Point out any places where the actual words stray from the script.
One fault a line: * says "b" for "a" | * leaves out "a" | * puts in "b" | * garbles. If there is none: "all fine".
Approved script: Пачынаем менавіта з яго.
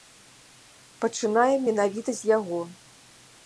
all fine